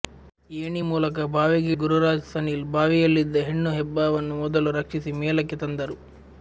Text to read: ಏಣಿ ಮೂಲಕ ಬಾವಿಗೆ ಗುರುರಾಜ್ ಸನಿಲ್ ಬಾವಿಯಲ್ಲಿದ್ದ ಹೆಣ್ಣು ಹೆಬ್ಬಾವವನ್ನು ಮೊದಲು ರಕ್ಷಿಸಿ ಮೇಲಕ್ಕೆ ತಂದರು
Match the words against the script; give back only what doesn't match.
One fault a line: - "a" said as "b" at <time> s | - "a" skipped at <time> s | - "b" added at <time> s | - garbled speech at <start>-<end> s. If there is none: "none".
none